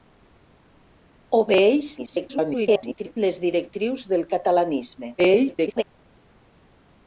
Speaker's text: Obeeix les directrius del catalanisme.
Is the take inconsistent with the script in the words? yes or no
yes